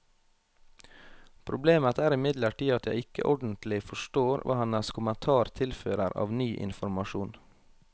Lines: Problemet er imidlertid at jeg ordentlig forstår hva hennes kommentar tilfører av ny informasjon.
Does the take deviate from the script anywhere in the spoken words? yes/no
yes